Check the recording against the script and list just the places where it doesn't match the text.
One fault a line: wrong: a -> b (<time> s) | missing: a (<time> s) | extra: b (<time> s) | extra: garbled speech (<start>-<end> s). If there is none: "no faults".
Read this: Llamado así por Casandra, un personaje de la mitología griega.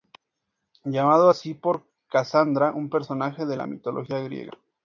no faults